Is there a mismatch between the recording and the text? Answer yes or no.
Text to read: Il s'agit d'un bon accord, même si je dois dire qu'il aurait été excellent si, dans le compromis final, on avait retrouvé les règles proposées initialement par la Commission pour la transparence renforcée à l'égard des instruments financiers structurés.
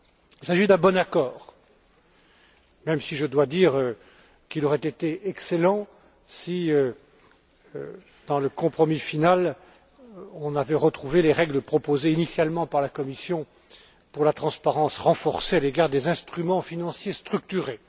no